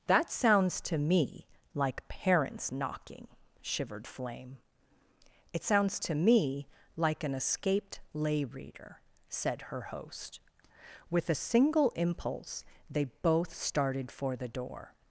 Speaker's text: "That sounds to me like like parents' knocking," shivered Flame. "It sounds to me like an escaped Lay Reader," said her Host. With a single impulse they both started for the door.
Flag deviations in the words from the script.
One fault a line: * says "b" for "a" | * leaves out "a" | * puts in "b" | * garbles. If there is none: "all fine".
* leaves out "like"